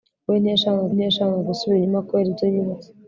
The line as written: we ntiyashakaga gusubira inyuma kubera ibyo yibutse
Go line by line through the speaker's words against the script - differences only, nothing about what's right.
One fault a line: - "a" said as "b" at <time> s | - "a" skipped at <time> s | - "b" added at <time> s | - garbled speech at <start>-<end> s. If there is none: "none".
- "ntiyashakaga" added at 0.9 s